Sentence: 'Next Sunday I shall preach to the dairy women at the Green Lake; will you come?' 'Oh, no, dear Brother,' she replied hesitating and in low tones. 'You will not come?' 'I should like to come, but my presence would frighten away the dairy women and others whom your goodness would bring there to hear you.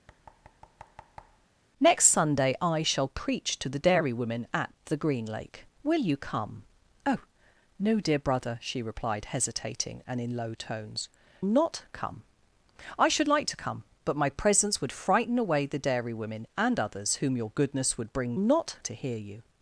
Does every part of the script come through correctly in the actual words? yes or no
no